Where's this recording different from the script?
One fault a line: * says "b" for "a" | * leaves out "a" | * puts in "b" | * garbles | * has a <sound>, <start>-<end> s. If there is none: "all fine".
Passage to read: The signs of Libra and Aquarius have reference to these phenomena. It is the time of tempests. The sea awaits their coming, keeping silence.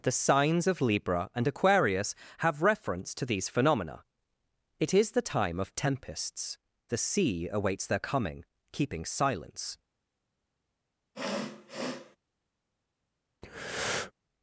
* has a sniff, 11.1-12.2 s
* has a breath, 13.4-14.1 s